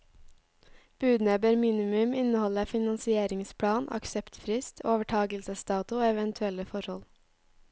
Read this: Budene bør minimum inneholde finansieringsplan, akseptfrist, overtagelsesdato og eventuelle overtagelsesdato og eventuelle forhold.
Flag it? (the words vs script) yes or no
yes